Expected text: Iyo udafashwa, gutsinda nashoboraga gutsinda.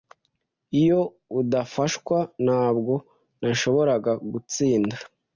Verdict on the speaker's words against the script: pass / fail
fail